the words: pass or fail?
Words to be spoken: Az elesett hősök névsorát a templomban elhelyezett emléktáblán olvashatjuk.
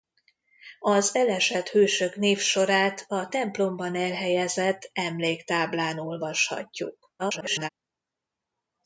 fail